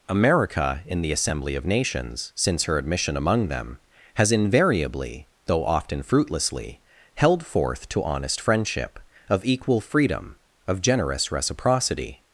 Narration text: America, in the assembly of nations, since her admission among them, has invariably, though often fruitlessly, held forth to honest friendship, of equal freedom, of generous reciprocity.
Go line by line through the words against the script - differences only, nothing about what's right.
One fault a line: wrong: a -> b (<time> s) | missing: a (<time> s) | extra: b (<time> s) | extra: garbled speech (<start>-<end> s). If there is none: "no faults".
no faults